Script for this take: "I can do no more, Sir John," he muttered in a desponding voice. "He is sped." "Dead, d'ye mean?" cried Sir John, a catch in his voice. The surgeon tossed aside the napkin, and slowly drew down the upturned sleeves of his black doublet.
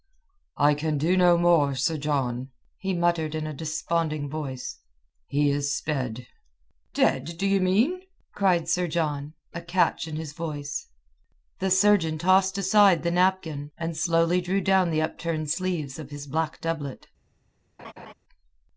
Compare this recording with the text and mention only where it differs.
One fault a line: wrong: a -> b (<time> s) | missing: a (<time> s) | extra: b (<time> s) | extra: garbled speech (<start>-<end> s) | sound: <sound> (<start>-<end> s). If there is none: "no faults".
sound: laugh (17.8-18.1 s)